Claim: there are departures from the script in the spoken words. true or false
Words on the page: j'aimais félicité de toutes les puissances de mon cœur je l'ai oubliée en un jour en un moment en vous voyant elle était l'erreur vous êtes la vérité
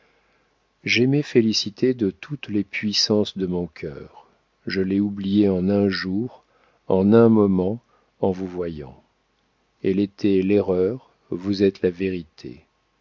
false